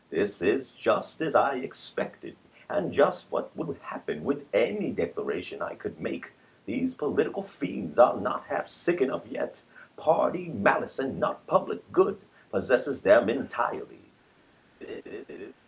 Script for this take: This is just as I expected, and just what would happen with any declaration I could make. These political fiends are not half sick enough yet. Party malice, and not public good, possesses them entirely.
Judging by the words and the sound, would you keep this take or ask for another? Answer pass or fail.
fail